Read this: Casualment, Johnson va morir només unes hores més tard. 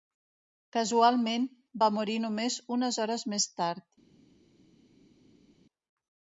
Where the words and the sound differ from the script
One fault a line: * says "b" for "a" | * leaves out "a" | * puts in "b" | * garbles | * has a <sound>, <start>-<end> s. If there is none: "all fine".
* leaves out "Johnson"